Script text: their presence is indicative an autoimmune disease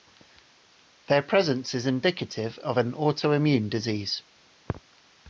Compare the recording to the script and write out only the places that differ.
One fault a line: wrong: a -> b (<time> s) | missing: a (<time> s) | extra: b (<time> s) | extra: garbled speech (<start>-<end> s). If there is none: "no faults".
extra: of (2.6 s)